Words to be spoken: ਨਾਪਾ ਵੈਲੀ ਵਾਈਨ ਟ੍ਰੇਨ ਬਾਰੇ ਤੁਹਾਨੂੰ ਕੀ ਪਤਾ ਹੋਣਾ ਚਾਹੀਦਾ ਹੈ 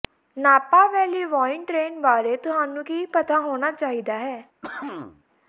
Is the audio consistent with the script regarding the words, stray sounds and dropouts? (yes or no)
no